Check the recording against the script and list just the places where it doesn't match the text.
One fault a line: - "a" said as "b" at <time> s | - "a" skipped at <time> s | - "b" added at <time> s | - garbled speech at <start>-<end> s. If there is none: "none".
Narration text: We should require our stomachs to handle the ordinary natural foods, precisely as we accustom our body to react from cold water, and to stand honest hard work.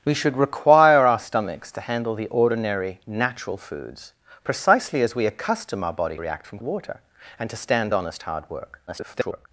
- "to" skipped at 6.2 s
- "cold" skipped at 6.6 s
- garbled speech at 8.9-9.5 s